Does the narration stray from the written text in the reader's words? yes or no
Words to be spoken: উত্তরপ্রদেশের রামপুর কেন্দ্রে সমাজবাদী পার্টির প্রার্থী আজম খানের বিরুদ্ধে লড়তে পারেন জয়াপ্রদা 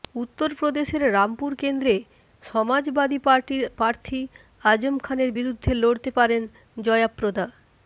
no